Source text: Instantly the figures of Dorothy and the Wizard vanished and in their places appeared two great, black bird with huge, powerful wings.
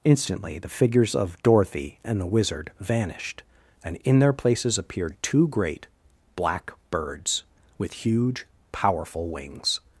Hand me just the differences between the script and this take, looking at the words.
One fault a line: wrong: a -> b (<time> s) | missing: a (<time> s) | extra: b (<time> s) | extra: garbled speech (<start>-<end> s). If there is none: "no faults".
wrong: bird -> birds (6.9 s)